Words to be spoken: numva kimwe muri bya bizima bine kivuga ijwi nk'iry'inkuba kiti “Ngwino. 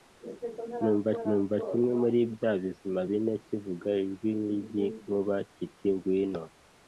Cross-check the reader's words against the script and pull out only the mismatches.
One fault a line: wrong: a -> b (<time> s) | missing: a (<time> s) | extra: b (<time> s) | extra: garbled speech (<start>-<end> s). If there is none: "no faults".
extra: numva (1.3 s)